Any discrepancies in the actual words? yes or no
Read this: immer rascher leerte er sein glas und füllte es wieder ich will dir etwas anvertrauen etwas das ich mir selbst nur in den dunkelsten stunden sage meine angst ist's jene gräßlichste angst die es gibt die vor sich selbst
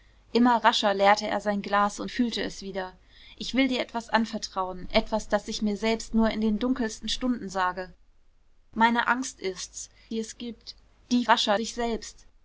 yes